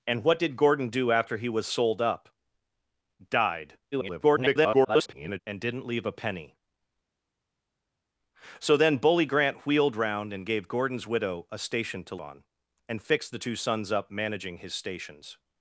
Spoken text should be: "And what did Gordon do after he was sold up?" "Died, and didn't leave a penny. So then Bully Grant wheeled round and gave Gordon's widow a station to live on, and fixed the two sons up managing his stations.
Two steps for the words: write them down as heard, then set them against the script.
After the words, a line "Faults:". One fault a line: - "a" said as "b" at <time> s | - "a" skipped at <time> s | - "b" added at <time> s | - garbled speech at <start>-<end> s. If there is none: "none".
"And what did Gordon do after he was sold up?" "Died, [garbled] and didn't leave a penny. So then Bully Grant wheeled round and gave Gordon's widow a station to on, and fixed the two sons up managing his stations.
Faults:
- garbled speech at 3.9-5.4 s
- "live" skipped at 12.2 s